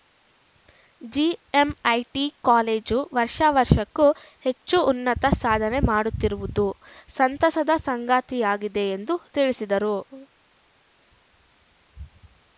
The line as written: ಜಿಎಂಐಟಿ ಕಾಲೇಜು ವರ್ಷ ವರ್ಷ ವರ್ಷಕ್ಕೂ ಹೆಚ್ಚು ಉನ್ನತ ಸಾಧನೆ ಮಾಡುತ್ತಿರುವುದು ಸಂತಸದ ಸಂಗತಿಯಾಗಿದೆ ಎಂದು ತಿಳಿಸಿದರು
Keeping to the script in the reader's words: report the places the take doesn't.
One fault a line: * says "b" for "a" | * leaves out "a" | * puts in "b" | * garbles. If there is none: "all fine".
* leaves out "ವರ್ಷ"